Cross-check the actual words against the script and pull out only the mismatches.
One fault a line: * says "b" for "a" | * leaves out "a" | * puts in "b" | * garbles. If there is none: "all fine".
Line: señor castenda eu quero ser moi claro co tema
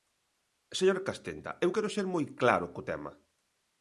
all fine